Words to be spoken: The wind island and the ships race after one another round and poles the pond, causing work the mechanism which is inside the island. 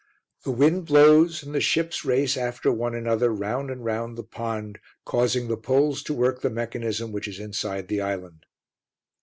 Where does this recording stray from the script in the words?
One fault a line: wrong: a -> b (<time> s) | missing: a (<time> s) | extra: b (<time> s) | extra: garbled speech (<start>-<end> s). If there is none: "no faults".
wrong: island -> blows (0.9 s)
wrong: poles -> round (3.9 s)
extra: the poles to (5.5 s)